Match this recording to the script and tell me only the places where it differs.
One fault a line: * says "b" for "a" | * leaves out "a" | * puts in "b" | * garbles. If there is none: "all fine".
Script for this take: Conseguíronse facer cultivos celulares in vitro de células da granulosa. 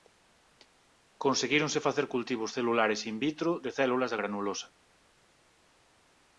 all fine